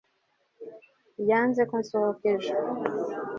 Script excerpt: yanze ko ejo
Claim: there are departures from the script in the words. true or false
true